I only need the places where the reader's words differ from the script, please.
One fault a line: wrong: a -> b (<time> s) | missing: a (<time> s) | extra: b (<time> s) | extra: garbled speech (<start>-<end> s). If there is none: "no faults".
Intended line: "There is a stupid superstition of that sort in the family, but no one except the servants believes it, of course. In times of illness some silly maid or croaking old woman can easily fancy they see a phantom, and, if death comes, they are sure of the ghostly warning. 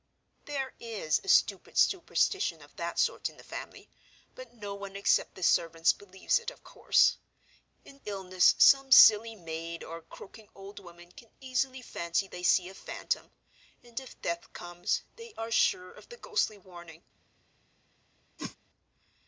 missing: times of (8.0 s)